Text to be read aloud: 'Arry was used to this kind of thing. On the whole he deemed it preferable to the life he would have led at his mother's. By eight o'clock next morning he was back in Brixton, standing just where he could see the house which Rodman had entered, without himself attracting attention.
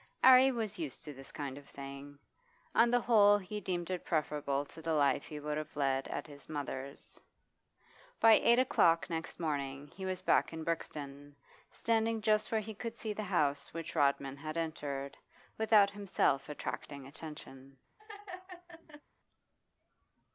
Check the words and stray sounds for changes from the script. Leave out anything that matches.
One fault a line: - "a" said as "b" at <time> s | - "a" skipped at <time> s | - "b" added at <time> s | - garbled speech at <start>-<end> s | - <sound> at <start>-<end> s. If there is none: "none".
- laugh at 18.0-19.0 s